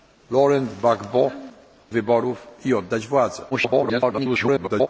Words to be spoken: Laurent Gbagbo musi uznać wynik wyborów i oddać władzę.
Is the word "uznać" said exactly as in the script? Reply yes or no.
no